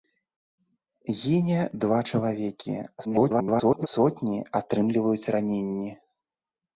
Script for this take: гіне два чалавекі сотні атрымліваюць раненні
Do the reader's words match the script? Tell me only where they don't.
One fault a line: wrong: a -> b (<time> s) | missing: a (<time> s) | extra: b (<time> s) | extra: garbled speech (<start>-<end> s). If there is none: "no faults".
extra: garbled speech (3.0-3.9 s)